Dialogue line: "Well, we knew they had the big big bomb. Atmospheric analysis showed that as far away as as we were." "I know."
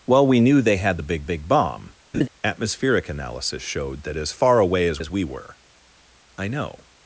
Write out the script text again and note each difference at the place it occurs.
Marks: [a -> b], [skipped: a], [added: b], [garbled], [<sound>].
"Well, we knew they had the big big bomb. [laugh] Atmospheric analysis showed that as far away as as we were." "I know."